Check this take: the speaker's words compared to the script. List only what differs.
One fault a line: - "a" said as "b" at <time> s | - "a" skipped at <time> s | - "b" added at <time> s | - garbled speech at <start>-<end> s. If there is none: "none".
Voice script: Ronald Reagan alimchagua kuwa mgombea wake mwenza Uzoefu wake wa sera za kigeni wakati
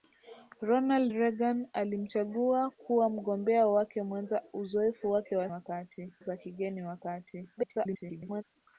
- "sera" said as "wakati" at 5.5 s
- garbled speech at 7.6-8.4 s